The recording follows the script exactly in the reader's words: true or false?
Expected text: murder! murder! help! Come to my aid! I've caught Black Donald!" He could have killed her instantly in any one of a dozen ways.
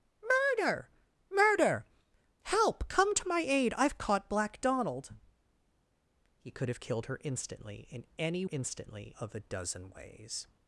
false